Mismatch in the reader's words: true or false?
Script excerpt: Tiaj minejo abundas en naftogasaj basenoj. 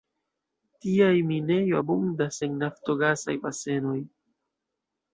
false